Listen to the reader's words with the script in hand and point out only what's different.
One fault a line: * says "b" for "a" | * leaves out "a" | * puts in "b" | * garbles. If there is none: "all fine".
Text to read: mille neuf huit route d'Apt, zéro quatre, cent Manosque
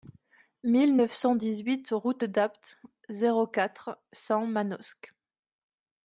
* puts in "cent dix"